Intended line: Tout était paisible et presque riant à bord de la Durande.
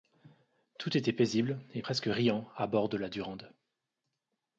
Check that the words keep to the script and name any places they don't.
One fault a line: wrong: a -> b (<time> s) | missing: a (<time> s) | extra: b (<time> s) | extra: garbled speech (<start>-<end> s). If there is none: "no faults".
no faults